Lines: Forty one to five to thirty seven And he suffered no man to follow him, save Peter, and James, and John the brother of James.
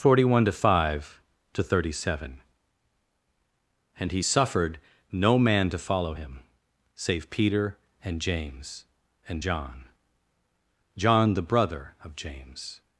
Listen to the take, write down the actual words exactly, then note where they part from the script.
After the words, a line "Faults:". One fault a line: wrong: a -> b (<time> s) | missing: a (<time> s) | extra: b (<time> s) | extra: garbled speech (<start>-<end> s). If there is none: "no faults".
Forty one to five to thirty seven And he suffered no man to follow him, save Peter, and James, and John John the brother of James.
Faults:
extra: John (11.0 s)